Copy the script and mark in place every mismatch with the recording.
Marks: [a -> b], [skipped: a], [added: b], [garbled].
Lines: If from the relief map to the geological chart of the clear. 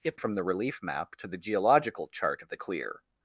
If from the relief map to the geological chart of the clear.